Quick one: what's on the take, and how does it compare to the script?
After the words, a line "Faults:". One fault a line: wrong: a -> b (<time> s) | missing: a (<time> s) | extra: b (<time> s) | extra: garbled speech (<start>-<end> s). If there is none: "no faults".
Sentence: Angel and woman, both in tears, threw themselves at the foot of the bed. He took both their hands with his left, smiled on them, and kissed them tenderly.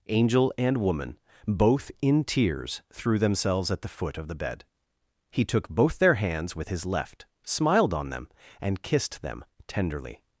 Angel and woman, both in tears, threw themselves at the foot of the bed. He took both their hands with his left, smiled on them, and kissed them tenderly.
Faults:
no faults